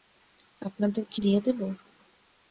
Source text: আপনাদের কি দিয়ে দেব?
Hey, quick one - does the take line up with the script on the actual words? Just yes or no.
yes